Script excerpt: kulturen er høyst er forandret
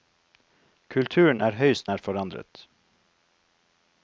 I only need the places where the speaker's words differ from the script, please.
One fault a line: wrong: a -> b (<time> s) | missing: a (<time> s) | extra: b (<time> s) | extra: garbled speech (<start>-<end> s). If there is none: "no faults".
no faults